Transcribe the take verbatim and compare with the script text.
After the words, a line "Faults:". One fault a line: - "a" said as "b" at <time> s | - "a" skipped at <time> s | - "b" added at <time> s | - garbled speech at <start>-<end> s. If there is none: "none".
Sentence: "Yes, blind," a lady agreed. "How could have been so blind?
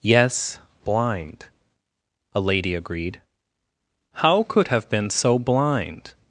"Yes, blind," a lady agreed. "How could have been so blind?
Faults:
none